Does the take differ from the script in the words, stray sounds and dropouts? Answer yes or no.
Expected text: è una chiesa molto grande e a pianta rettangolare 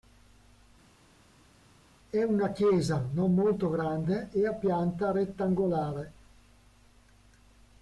yes